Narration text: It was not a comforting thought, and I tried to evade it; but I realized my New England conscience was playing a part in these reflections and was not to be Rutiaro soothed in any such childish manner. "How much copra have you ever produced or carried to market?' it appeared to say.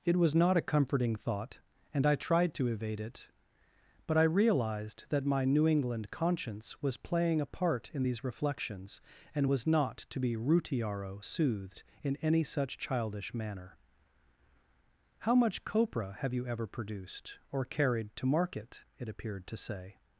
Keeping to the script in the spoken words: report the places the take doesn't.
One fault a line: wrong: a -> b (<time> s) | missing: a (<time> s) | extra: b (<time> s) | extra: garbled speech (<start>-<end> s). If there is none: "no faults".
extra: that (5.1 s)